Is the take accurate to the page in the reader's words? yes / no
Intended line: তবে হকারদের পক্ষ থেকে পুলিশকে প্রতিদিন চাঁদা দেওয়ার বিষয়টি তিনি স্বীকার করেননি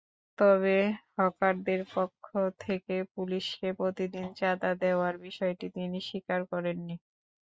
yes